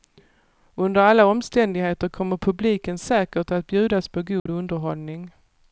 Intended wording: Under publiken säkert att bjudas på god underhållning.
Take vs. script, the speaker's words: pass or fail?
fail